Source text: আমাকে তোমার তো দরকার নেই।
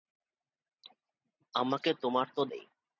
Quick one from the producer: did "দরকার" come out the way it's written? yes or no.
no